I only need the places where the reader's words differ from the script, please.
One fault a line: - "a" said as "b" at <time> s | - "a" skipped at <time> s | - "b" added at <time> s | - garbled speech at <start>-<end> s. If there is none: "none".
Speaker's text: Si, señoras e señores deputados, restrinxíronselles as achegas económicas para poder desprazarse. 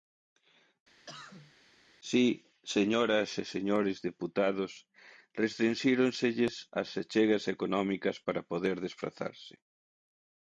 none